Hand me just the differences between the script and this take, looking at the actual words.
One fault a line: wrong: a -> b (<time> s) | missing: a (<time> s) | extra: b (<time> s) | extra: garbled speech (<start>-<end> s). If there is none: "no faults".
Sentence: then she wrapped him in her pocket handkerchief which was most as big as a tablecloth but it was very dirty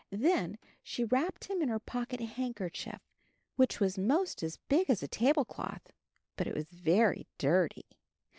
no faults